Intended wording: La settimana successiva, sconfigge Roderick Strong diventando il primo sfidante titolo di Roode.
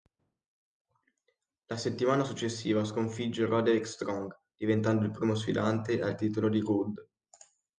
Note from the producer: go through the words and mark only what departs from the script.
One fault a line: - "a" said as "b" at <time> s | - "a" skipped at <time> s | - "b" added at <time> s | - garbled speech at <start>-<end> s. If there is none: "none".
- "al" added at 6.0 s